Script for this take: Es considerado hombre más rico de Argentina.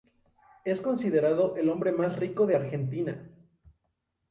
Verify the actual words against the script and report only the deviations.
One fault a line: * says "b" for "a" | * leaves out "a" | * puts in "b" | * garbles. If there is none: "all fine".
* puts in "el"